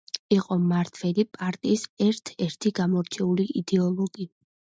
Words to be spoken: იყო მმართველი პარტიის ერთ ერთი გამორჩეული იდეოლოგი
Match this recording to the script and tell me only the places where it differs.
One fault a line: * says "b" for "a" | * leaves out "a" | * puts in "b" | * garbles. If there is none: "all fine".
all fine